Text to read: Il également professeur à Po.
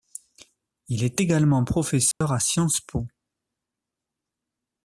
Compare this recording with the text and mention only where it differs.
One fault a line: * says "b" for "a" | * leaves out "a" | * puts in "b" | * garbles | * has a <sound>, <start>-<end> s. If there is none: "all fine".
* puts in "est"
* has a dropout, 2.1-2.2 s
* puts in "Sciences"